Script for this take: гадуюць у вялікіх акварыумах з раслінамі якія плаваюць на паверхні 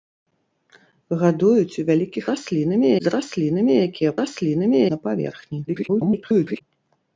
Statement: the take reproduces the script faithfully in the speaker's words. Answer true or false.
false